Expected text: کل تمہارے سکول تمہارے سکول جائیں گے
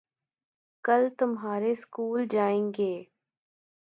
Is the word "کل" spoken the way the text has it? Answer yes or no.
yes